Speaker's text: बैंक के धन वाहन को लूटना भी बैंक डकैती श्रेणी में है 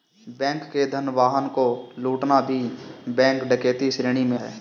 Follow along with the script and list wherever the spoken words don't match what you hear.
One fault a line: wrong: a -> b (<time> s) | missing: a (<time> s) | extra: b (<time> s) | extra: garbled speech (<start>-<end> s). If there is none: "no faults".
no faults